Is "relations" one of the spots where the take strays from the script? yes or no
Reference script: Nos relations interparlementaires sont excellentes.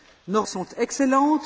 yes